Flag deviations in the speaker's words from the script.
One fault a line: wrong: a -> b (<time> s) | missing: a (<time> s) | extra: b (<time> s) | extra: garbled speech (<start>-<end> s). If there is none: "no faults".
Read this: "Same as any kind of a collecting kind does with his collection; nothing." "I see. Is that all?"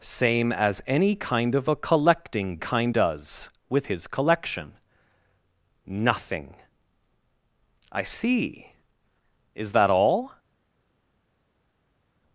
no faults